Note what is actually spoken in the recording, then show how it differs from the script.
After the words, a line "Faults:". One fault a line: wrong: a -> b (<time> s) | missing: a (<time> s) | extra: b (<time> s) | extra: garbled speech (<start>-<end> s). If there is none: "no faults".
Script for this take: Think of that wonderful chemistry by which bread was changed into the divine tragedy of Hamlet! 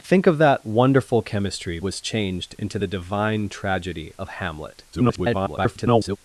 Think of that wonderful chemistry was changed into the divine tragedy of Hamlet! [garbled]
Faults:
missing: by which bread (1.8 s)
extra: garbled speech (4.9-6.2 s)